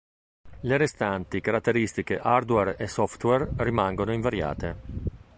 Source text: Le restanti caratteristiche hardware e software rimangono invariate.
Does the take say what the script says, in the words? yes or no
yes